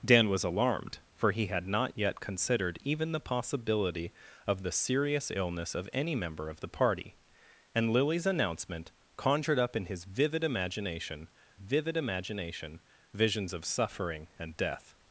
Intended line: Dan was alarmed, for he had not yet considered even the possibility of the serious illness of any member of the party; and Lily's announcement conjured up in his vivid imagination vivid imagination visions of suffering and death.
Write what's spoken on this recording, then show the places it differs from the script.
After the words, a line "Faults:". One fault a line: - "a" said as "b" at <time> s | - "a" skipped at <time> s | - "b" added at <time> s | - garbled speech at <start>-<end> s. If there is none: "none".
Dan was alarmed, for he had not yet considered even the possibility of the serious illness of any member of the party; and Lily's announcement conjured up in his vivid imagination vivid imagination visions of suffering and death.
Faults:
none